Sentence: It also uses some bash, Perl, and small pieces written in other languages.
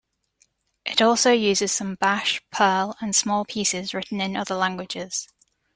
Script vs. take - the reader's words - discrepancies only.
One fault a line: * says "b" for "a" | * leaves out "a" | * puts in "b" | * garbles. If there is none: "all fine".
all fine